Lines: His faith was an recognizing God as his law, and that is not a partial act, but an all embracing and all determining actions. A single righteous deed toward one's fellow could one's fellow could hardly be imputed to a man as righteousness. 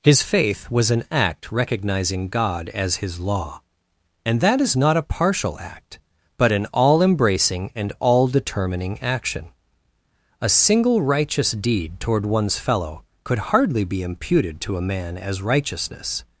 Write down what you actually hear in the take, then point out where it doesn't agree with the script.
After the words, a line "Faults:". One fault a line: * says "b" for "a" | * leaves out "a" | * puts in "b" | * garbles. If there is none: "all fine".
His faith was an act recognizing God as his law, and that is not a partial act, but an all embracing and all determining action. A single righteous deed toward one's fellow could hardly be imputed to a man as righteousness.
Faults:
* puts in "act"
* says "action" for "actions"
* leaves out "one's fellow could"